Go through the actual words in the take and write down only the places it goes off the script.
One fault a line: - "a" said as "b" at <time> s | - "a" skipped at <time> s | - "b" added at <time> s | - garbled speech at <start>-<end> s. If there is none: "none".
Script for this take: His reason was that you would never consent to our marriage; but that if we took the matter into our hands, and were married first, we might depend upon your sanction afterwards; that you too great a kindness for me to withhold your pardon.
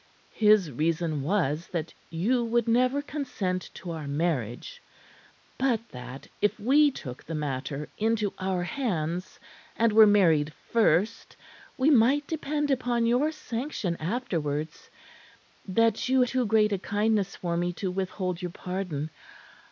none